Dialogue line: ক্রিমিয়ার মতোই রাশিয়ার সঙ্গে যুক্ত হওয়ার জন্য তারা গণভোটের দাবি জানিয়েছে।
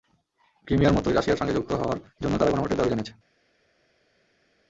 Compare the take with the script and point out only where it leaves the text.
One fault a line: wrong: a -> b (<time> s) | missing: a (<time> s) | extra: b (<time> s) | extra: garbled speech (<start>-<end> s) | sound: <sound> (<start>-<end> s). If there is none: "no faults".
no faults